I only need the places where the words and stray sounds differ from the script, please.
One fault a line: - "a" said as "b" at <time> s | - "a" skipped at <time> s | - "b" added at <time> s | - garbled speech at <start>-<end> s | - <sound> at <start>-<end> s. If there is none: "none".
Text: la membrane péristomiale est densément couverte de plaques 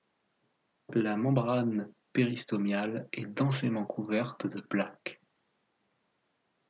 none